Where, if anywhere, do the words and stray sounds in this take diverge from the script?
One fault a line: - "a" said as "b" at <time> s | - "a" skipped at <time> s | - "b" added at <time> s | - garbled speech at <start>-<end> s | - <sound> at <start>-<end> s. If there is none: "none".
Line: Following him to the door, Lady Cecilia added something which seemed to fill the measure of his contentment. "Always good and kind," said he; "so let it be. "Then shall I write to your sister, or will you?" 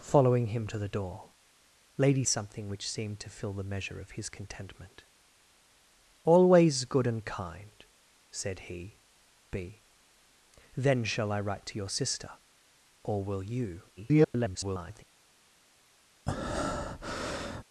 - "Cecilia added" skipped at 2.2 s
- "so let it" skipped at 9.0 s
- garbled speech at 14.0-15.0 s
- breath at 16.3-17.6 s